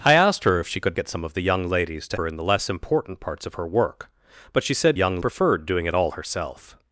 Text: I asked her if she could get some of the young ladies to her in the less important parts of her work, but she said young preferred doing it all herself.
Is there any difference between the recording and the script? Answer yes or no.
no